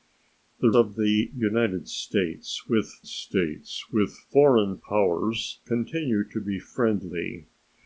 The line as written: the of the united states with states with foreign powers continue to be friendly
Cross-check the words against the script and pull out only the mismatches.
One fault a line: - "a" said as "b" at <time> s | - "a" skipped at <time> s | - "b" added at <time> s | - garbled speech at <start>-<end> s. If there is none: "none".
none